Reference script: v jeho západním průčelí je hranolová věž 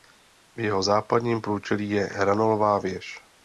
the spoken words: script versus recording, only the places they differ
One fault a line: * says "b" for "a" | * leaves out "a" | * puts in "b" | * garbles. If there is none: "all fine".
all fine